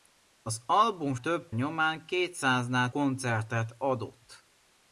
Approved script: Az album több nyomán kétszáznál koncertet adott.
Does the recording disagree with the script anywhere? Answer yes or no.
no